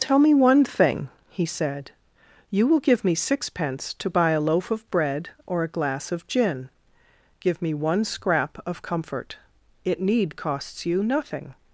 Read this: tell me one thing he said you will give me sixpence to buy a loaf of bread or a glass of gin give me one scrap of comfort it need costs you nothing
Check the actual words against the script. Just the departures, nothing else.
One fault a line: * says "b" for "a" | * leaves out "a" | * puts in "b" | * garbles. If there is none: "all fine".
all fine